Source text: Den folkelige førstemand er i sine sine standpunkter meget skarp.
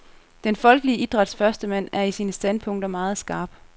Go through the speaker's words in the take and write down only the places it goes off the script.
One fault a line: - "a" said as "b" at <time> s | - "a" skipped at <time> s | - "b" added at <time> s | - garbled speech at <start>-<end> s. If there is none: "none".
- "idræts" added at 1.0 s
- "sine" skipped at 2.3 s